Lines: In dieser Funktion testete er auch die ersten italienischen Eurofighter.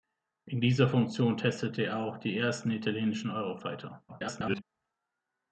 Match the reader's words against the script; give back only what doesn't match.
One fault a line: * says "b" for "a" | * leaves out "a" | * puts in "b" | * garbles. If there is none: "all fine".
* garbles